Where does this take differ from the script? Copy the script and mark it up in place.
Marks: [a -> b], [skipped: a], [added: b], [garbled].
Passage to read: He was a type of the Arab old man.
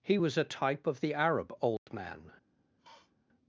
He was a type of the Arab old man.